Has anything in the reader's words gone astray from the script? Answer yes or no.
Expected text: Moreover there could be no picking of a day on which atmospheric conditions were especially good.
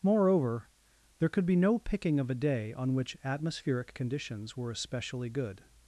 no